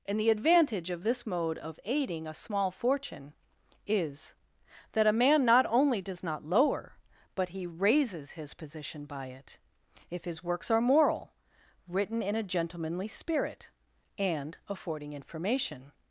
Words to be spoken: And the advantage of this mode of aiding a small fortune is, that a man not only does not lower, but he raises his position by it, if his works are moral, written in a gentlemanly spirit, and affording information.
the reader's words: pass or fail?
pass